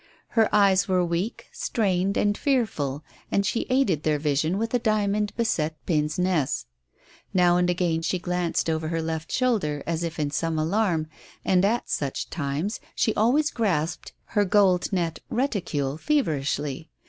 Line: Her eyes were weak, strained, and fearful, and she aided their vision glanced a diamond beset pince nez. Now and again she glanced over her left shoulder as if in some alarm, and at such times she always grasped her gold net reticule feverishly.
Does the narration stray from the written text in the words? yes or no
yes